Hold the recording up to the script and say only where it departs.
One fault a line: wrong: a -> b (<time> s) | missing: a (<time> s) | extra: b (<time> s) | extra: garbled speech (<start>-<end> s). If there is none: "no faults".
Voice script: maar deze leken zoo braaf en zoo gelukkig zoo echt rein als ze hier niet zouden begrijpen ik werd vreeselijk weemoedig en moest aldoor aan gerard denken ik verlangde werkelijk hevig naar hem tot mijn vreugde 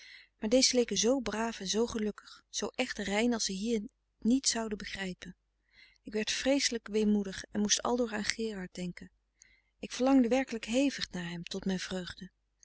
no faults